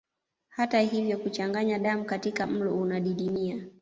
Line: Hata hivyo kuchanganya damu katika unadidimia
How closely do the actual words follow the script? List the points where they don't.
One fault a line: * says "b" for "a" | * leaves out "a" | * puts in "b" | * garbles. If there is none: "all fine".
* puts in "mlo"